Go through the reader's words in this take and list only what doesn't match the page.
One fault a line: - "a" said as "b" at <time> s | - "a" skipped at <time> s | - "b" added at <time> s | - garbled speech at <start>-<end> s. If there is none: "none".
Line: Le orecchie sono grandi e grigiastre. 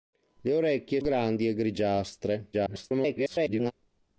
- "sono" skipped at 1.0 s
- garbled speech at 2.5-3.7 s